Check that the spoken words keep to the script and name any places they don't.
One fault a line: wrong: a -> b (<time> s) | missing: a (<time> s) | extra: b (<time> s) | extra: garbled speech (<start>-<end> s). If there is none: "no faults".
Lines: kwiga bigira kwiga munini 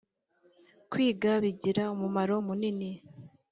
wrong: kwiga -> umumaro (1.9 s)